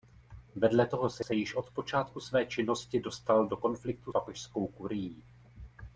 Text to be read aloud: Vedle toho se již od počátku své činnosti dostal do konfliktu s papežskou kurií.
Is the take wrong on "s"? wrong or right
wrong